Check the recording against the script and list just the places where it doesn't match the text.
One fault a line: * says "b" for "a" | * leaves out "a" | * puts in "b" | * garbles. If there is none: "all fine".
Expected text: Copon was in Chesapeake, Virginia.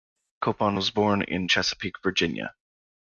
* puts in "born"